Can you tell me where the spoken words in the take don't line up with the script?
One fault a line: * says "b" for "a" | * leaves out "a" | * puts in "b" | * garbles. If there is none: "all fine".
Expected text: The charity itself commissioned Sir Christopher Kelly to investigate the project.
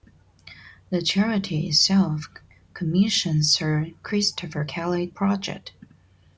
* leaves out "to investigate the"